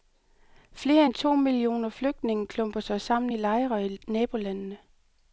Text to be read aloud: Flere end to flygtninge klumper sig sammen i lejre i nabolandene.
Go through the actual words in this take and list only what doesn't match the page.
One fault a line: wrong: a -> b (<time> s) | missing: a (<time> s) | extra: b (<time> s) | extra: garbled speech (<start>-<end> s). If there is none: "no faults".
extra: millioner (1.4 s)